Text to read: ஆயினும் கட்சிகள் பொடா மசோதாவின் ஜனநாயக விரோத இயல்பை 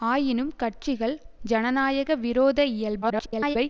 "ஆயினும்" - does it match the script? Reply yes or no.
yes